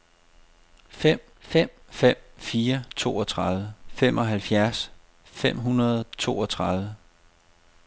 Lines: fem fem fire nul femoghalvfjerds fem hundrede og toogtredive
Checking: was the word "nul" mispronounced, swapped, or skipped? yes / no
yes